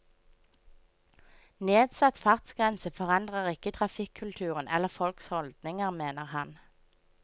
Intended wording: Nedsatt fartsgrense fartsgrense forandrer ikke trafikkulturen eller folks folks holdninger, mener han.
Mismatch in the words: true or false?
true